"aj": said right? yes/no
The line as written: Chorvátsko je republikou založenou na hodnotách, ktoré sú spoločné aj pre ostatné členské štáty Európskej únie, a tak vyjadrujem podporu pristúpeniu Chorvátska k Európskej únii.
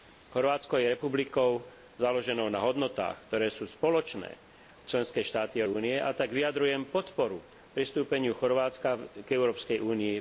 no